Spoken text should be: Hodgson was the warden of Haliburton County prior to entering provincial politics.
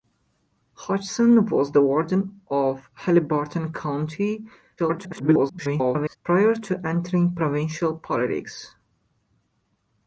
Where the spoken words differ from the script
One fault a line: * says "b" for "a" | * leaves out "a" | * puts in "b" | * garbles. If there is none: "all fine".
* garbles